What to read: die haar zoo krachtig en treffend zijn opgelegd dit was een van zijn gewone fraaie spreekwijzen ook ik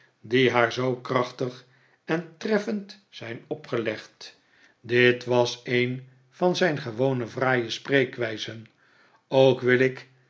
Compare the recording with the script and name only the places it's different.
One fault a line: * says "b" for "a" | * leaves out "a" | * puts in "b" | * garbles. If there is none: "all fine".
* puts in "wil"